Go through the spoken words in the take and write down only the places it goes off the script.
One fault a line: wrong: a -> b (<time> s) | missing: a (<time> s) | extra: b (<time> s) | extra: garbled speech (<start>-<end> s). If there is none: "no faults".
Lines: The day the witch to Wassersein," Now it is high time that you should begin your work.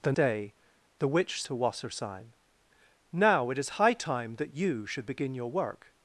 no faults